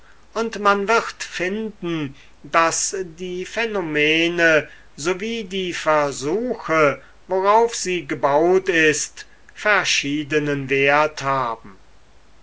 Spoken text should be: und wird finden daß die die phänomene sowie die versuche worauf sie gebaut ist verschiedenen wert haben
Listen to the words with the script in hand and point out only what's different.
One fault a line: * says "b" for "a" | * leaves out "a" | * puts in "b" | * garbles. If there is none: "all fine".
* puts in "man"
* leaves out "die"